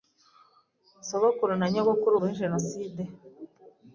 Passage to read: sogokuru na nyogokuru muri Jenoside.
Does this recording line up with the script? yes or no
yes